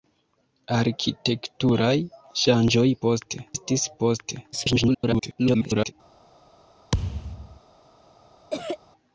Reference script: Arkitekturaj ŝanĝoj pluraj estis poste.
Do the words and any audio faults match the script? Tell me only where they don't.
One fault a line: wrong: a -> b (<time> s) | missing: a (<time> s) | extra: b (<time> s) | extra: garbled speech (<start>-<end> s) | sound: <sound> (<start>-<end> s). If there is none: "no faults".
wrong: pluraj -> poste (3.1 s)
extra: garbled speech (4.5-5.9 s)
sound: thud (6.9-7.6 s)
sound: cough (8.5-8.8 s)